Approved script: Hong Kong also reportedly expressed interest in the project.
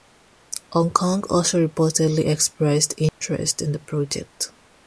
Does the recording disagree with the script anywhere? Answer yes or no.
no